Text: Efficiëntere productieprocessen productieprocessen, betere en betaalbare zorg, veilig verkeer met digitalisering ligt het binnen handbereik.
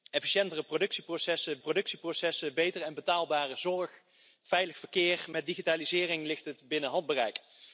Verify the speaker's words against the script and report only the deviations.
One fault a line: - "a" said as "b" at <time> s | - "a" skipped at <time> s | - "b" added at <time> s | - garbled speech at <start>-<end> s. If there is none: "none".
none